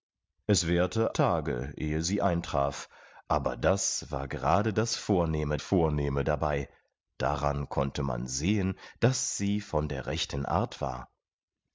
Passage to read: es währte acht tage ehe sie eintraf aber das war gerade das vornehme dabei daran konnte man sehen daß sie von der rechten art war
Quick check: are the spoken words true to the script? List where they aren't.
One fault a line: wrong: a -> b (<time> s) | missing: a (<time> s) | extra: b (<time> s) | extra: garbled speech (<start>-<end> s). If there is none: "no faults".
missing: acht (1.1 s)
extra: vornehme (5.6 s)